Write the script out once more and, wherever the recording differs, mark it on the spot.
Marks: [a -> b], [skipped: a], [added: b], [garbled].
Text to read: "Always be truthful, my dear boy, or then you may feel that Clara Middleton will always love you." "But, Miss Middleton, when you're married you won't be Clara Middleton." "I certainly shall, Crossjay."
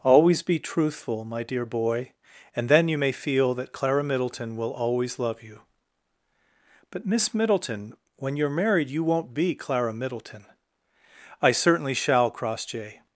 "Always be truthful, my dear boy, [or -> and] then you may feel that Clara Middleton will always love you." "But, Miss Middleton, when you're married you won't be Clara Middleton." "I certainly shall, Crossjay."